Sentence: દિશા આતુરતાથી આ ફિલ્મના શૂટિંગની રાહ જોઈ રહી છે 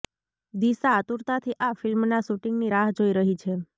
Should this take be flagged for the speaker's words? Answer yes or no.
no